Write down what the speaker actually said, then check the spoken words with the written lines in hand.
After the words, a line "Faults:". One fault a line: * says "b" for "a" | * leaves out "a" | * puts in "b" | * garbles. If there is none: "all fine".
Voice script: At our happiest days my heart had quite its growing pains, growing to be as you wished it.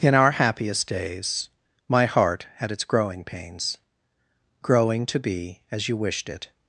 In our happiest days my heart had its growing pains, growing to be as you wished it.
Faults:
* says "In" for "At"
* leaves out "quite"